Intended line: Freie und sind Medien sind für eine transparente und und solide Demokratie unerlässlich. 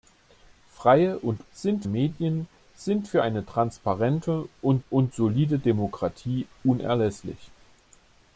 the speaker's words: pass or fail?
pass